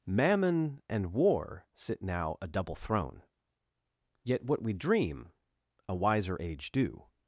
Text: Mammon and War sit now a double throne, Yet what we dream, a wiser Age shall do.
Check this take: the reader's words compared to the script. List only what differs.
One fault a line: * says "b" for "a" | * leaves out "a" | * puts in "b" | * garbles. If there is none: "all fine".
* leaves out "shall"